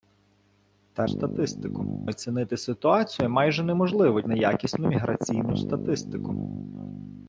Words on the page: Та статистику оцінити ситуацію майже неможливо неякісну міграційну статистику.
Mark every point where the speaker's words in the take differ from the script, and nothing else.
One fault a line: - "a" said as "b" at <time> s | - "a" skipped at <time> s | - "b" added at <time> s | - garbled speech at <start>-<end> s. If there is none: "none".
none